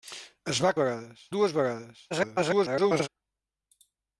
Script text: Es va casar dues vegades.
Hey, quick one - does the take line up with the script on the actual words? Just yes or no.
no